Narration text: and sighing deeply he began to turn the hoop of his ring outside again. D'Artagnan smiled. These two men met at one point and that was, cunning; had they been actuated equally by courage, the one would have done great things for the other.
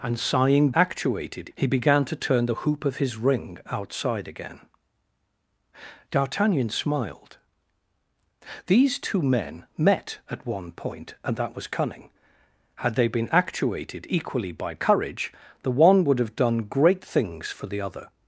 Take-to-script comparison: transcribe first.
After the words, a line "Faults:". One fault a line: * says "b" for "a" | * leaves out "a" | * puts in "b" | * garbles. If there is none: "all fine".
and sighing actuated he began to turn the hoop of his ring outside again. D'Artagnan smiled. These two men met at one point and that was, cunning; had they been actuated equally by courage, the one would have done great things for the other.
Faults:
* says "actuated" for "deeply"